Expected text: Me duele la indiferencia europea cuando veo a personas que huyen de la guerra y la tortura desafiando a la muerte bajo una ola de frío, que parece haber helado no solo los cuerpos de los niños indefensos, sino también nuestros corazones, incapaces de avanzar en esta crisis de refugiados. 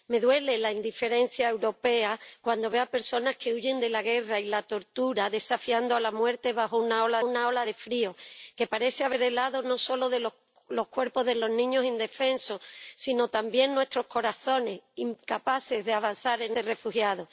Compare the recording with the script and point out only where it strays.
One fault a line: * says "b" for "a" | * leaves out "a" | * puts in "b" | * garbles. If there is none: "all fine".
* puts in "una ola"
* leaves out "esta crisis"